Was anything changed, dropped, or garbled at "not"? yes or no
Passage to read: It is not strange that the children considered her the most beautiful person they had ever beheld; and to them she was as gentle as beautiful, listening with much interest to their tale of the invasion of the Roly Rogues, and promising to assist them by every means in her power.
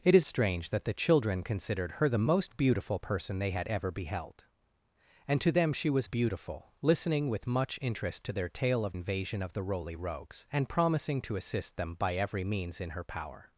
yes